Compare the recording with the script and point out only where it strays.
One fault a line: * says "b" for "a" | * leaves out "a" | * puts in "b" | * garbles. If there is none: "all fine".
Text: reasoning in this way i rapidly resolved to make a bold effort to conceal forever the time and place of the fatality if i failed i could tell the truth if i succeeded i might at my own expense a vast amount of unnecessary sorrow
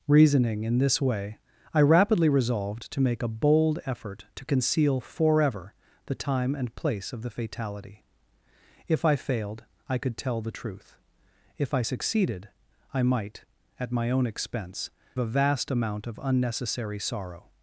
all fine